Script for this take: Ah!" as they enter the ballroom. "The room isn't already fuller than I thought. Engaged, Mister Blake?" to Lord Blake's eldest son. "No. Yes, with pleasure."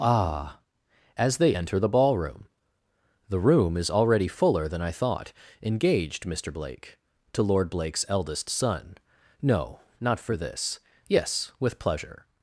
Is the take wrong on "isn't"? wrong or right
wrong